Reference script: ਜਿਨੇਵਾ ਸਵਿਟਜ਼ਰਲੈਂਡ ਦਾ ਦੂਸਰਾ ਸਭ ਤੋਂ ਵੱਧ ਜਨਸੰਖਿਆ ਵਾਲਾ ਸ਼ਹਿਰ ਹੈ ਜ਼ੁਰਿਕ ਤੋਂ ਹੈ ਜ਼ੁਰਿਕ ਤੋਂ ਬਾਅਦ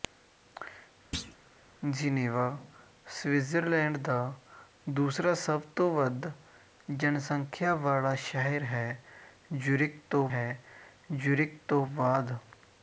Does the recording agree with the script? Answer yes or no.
yes